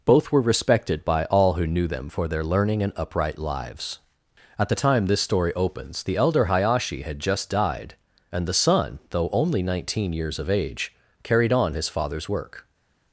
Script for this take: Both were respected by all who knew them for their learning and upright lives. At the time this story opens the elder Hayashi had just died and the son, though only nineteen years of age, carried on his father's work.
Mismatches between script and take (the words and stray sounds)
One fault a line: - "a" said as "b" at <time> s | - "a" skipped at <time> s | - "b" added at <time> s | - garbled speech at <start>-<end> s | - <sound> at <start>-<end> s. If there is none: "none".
none